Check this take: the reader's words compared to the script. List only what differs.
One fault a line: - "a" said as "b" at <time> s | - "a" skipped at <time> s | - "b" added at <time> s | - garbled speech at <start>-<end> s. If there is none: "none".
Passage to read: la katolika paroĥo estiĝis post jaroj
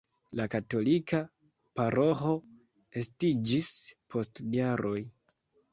none